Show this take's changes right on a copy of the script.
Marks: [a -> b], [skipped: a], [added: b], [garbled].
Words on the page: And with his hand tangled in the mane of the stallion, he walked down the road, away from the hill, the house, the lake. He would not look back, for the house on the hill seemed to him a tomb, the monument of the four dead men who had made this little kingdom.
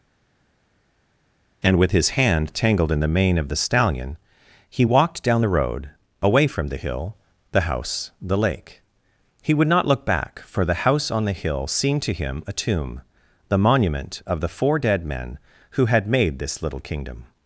And with his hand tangled in the mane of the stallion, he walked down the road, away from the hill, the house, the lake. He would not look back, for the house on the hill seemed to him a tomb, the monument of the four dead men who had made this little kingdom.